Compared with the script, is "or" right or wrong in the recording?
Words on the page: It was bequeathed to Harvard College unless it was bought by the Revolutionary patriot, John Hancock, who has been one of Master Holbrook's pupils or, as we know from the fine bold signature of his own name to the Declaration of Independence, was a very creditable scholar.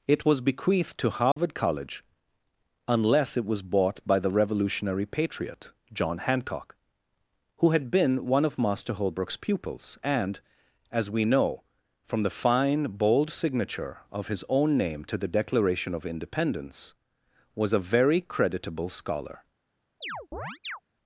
wrong